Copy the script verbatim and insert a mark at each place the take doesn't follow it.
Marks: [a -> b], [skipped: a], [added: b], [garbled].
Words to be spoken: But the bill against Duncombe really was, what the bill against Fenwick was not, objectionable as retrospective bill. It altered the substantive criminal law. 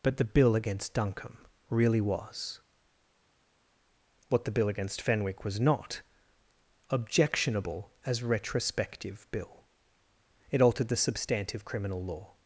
But the bill against Duncombe really was, what the bill against Fenwick was not, objectionable as retrospective bill. It altered the substantive criminal law.